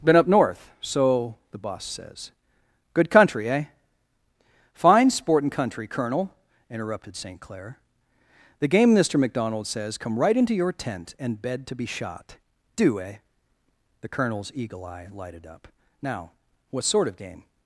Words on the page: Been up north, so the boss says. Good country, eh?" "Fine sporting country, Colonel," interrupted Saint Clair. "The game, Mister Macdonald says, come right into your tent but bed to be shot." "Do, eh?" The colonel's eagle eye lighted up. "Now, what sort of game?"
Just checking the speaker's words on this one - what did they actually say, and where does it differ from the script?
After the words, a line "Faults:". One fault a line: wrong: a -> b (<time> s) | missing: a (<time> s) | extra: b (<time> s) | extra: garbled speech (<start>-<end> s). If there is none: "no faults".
Been up north, so the boss says. Good country, eh?" "Fine sporting country, Colonel," interrupted Saint Clair. "The game, Mister Macdonald says, come right into your tent and bed to be shot." "Do, eh?" The colonel's eagle eye lighted up. "Now, what sort of game?"
Faults:
wrong: but -> and (11.2 s)